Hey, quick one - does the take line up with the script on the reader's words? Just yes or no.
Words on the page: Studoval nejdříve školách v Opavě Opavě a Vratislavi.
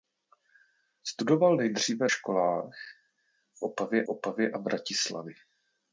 yes